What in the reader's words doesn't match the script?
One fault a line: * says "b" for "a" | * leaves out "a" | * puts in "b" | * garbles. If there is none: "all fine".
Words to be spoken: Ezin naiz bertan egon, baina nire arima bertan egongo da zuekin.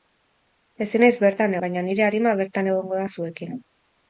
* leaves out "egon"